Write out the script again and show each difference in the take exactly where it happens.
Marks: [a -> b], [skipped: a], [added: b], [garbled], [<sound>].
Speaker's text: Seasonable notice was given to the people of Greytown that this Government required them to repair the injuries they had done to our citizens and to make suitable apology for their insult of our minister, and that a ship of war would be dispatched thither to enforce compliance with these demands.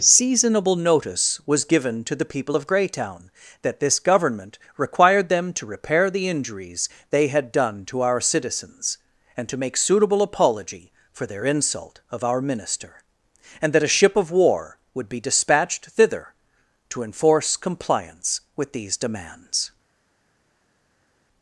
Seasonable notice was given to the people of Greytown that this Government required them to repair the injuries they had done to our citizens and to make suitable apology for their insult of our minister, and that a ship of war would be dispatched thither to enforce compliance with these demands.